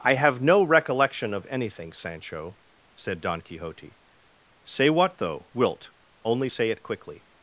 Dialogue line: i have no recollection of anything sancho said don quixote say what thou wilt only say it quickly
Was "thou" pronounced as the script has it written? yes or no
no